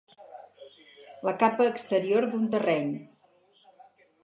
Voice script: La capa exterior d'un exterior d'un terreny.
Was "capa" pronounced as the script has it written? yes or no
yes